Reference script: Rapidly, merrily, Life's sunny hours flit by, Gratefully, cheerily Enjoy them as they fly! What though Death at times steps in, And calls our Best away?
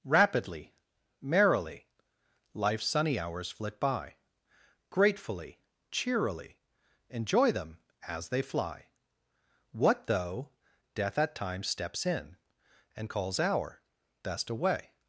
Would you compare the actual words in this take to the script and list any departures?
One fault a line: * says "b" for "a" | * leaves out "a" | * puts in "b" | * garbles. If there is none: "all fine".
all fine